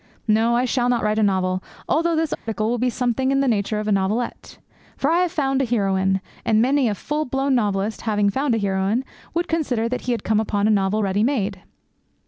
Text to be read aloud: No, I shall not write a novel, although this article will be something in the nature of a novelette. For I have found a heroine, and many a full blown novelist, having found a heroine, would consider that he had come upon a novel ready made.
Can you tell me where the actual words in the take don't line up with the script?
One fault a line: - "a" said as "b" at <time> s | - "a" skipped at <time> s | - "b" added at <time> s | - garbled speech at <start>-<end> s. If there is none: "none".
none